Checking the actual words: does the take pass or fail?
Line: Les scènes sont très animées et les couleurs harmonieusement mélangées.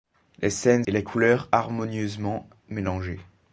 fail